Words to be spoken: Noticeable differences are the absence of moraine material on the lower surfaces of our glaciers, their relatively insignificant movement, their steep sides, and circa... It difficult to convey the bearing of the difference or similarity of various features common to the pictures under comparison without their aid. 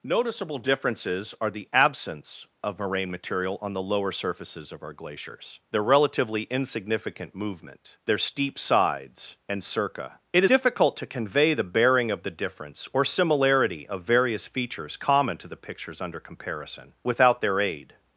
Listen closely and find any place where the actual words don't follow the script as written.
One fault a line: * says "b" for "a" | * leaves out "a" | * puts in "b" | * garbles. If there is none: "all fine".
all fine